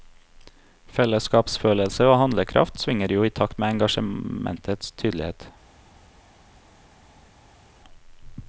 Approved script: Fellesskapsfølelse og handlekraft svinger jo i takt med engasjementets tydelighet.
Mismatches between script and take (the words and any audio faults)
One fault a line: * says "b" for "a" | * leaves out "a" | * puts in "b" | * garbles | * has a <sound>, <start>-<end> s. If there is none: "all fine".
all fine